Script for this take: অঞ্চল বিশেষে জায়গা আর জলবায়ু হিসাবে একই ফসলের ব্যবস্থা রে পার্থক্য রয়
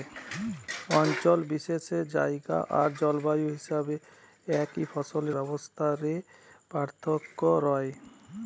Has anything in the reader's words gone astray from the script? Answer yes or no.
no